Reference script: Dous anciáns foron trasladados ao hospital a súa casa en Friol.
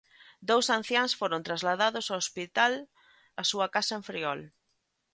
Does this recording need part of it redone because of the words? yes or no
no